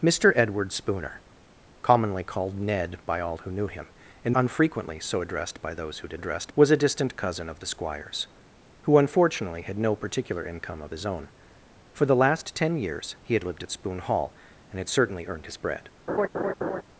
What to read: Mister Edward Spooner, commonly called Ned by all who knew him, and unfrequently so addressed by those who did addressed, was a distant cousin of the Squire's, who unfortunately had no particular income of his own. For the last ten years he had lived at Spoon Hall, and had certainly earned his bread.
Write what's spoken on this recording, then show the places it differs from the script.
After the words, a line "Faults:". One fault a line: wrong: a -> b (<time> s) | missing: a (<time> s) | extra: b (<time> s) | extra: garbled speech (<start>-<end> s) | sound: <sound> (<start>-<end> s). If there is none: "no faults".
Mister Edward Spooner, commonly called Ned by all who knew him, and unfrequently so addressed by those who did addressed, was a distant cousin of the Squire's, who unfortunately had no particular income of his own. For the last ten years he had lived at Spoon Hall, and had certainly earned his bread.
Faults:
sound: laugh (16.1-16.8 s)